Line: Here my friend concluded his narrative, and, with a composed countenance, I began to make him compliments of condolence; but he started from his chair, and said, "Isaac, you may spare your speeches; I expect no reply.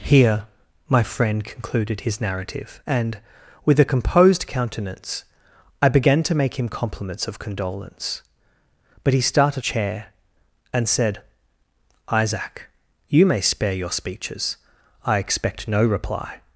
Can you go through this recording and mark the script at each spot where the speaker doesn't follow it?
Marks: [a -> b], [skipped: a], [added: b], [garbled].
Here my friend concluded his narrative, and, with a composed countenance, I began to make him compliments of condolence; but he started [skipped: from his] chair, and said, "Isaac, you may spare your speeches; I expect no reply.